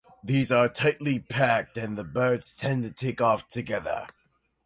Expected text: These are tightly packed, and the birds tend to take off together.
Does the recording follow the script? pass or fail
pass